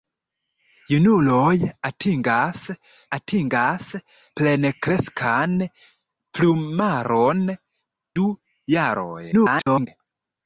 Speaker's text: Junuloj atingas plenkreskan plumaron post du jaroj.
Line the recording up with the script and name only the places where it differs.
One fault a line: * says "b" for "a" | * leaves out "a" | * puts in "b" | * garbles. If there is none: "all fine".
* puts in "atingas"
* leaves out "post"
* garbles